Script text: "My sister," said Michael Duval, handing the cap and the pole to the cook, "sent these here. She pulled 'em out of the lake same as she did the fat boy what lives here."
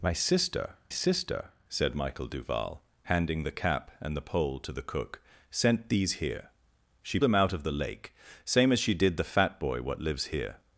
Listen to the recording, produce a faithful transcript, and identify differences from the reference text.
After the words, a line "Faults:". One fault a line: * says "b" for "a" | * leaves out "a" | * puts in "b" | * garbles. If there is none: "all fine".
"My sister sister," said Michael Duval, handing the cap and the pole to the cook, "sent these here. She 'em out of the lake same as she did the fat boy what lives here."
Faults:
* puts in "sister"
* leaves out "pulled"